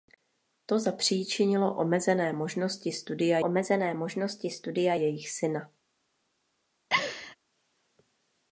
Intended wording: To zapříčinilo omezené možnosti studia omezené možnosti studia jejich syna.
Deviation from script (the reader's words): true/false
false